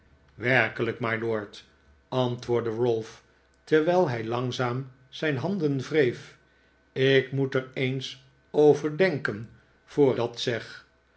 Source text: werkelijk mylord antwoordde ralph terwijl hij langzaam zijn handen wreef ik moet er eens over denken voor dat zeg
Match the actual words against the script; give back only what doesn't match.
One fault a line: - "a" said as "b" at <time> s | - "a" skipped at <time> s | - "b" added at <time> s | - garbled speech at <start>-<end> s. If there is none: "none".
none